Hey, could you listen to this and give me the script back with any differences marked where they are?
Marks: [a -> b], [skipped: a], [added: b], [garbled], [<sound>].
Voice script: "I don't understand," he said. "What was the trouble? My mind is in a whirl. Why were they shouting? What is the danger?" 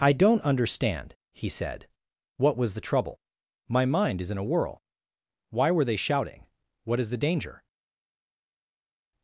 "I don't understand," he said. "What was the trouble? My mind is in a whirl. Why were they shouting? What is the danger?"